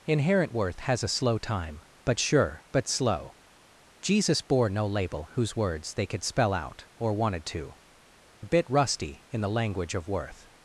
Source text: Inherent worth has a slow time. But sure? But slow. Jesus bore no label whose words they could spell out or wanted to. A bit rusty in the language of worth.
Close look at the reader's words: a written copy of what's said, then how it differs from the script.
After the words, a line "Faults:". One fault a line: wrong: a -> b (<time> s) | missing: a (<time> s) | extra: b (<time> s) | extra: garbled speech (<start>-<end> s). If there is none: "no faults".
Inherent worth has a slow time. But sure? But slow. Jesus bore no label whose words they could spell out or wanted to. A bit rusty in the language of worth.
Faults:
no faults